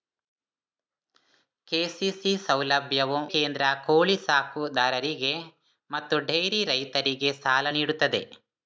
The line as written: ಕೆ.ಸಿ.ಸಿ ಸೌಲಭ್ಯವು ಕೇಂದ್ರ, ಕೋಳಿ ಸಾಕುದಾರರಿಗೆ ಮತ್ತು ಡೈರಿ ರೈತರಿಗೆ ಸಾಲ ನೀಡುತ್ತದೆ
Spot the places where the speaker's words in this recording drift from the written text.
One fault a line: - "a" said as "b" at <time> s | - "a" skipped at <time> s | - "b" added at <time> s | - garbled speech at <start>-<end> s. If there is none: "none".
none